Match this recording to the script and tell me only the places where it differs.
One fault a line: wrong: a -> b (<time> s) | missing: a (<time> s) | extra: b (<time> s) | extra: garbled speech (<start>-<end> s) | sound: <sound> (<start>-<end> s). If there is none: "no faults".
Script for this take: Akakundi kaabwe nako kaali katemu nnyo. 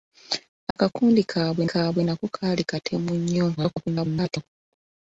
sound: dropout (0.7-0.8 s)
extra: kaabwe (1.6 s)
extra: garbled speech (3.6-4.5 s)